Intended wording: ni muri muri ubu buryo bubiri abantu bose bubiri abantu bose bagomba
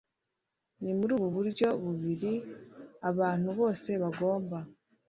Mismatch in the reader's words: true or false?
true